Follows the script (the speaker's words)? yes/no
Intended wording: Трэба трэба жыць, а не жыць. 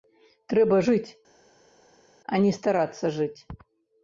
no